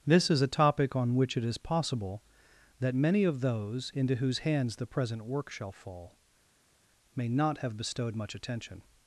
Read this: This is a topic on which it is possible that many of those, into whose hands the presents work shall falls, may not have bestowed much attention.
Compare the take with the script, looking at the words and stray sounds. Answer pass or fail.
fail